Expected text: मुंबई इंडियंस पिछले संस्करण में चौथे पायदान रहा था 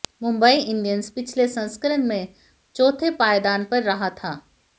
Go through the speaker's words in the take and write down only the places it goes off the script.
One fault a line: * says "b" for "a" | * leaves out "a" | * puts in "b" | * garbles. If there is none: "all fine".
* puts in "पर"